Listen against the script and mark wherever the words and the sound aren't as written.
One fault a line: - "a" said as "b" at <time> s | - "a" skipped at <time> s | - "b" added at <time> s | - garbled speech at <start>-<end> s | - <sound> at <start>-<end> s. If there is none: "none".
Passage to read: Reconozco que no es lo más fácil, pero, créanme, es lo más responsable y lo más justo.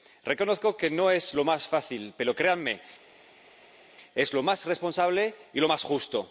none